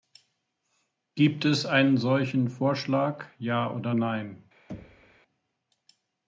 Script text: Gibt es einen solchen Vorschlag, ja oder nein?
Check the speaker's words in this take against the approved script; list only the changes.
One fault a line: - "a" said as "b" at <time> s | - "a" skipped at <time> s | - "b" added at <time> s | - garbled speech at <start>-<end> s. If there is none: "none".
none